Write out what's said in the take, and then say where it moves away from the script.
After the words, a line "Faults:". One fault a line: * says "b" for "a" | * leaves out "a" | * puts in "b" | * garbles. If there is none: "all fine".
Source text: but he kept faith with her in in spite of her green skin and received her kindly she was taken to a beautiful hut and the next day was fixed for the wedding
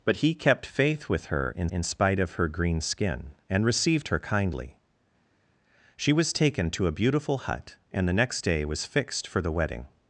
but he kept faith with her in in spite of her green skin and received her kindly she was taken to a beautiful hut and the next day was fixed for the wedding
Faults:
all fine